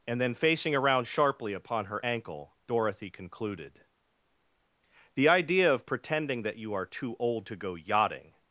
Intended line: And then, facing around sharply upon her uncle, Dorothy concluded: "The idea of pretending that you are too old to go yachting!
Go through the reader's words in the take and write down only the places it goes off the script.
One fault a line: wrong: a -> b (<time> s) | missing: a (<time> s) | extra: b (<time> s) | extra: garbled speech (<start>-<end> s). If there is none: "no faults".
wrong: uncle -> ankle (2.0 s)